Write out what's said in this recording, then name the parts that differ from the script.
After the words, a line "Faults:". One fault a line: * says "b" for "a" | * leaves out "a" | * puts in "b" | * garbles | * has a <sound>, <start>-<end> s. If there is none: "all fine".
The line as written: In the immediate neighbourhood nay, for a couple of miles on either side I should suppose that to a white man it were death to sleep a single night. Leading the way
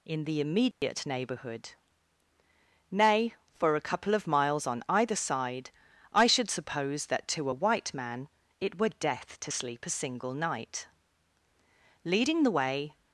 In the immediate neighbourhood nay, for a couple of miles on either side I should suppose that to a white man it were death to sleep a single night. Leading the way
Faults:
* has a dropout, 0.7-0.8 s